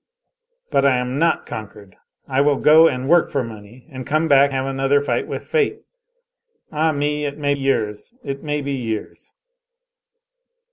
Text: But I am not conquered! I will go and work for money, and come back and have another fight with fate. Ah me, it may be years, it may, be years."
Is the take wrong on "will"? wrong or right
right